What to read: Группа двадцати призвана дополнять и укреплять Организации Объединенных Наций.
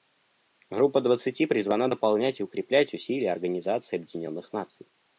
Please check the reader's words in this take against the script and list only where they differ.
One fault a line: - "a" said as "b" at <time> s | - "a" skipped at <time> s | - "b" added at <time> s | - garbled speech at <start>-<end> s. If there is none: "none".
- "усилия" added at 2.9 s